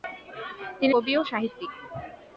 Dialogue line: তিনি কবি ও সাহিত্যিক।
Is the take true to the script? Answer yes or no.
yes